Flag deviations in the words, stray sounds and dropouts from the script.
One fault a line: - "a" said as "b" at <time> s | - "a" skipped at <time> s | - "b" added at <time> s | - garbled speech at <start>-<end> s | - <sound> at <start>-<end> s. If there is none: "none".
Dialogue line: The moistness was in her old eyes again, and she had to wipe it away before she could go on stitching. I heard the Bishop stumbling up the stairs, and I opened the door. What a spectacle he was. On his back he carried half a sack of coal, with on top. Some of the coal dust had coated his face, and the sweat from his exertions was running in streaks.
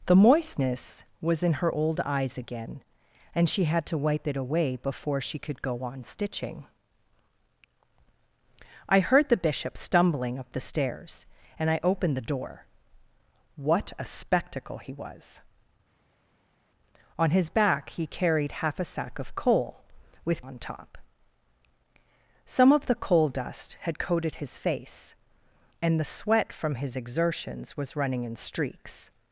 none